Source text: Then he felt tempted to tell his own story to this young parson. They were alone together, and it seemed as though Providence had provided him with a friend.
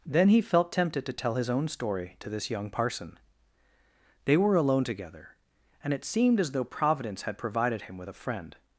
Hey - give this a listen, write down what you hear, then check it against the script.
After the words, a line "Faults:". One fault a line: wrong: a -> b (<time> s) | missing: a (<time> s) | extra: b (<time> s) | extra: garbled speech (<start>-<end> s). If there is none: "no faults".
Then he felt tempted to tell his own story to this young parson. They were alone together, and it seemed as though Providence had provided him with a friend.
Faults:
no faults